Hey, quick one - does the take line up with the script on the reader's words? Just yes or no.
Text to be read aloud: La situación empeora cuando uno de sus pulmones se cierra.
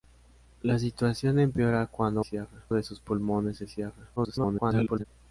no